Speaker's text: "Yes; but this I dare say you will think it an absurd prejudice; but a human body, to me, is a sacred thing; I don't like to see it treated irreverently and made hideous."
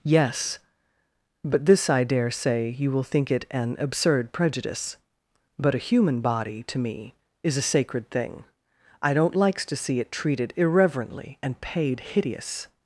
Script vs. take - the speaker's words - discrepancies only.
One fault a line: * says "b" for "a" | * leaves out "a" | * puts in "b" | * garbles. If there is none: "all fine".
* says "likes" for "like"
* says "paid" for "made"